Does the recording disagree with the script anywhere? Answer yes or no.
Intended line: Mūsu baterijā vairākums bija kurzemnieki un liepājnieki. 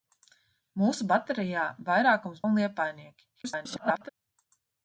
yes